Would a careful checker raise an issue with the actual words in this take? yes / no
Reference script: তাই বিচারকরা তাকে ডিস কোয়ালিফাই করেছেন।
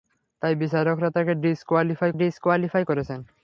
yes